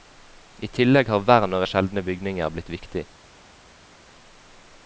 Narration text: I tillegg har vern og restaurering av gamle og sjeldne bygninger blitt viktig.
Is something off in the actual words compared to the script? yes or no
yes